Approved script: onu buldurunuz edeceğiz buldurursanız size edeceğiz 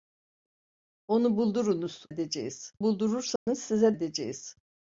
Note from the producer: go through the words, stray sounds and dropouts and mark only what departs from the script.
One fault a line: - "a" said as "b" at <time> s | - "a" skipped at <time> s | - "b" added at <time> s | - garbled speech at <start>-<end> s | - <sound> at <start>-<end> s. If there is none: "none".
- dropout at 3.4-3.5 s